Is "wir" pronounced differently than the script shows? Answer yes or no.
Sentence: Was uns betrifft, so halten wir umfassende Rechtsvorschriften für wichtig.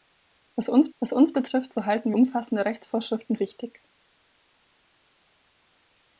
yes